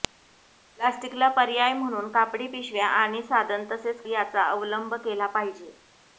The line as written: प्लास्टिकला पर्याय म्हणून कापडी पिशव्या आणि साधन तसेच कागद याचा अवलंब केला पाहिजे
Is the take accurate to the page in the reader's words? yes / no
no